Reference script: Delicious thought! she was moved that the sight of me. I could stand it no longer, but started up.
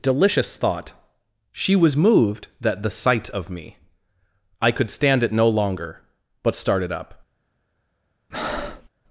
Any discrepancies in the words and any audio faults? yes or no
yes